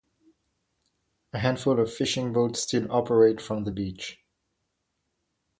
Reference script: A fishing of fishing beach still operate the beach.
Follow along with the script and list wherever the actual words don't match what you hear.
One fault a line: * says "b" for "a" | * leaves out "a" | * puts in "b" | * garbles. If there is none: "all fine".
* says "handful" for "fishing"
* says "boats" for "beach"
* puts in "from"